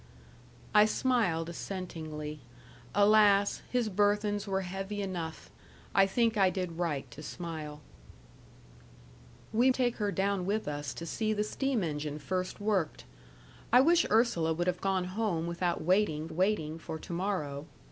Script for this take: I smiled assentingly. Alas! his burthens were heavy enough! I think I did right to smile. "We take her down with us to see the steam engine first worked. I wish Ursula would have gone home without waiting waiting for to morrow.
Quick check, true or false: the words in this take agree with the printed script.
true